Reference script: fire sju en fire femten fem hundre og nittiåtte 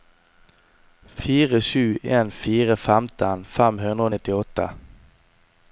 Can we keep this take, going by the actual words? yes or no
yes